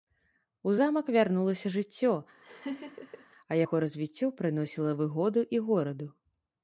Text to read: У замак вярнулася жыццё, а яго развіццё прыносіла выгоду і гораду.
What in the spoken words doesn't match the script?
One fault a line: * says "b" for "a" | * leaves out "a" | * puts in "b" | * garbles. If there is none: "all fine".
all fine